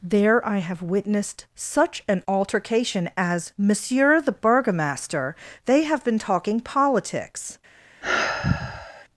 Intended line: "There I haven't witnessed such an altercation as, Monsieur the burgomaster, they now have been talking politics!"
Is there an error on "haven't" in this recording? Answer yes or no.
yes